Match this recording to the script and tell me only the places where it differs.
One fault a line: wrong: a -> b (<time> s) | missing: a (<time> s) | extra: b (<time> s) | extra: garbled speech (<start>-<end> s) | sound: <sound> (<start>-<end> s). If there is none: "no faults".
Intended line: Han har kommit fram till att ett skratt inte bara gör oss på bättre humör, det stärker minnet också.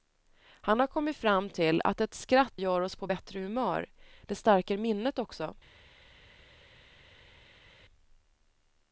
missing: inte bara (2.6 s)